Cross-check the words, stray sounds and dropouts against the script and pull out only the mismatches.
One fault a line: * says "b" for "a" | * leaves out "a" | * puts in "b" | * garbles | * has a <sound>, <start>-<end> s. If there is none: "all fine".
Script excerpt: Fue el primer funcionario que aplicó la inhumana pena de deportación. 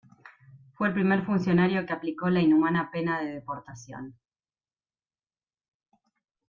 all fine